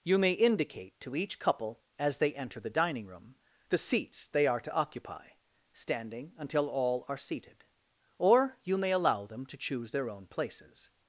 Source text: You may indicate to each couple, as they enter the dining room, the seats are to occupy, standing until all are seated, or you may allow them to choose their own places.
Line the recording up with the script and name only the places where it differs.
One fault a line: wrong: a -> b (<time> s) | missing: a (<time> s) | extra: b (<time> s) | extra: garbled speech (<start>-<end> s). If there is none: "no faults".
extra: they (4.3 s)